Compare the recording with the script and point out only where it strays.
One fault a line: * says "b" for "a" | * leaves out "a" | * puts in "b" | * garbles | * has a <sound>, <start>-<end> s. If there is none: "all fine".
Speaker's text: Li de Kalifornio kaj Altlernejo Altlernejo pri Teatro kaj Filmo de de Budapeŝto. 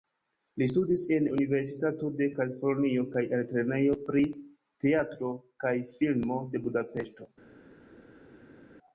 * puts in "studis en Universitato"
* leaves out "Altlernejo"
* leaves out "de"